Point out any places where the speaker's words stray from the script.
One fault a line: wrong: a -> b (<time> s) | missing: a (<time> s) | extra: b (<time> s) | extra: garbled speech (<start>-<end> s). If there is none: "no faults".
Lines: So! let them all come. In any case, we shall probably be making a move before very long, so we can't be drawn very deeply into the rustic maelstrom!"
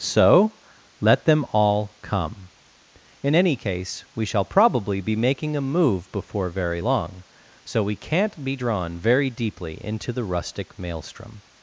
no faults